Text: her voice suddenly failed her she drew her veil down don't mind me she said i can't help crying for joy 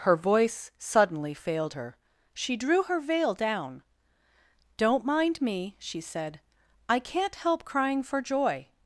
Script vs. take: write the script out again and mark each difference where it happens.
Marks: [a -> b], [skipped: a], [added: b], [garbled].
her voice suddenly failed her she drew her veil down don't mind me she said i can't help crying for joy